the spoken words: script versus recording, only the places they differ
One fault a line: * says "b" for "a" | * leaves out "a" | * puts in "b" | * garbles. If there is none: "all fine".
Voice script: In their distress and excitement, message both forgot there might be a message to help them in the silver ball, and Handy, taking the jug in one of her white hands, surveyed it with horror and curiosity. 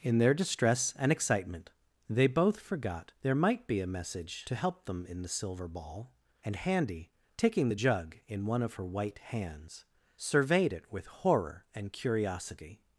* says "they" for "message"